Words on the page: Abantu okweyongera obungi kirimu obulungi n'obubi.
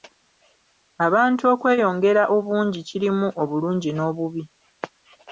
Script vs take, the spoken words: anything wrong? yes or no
no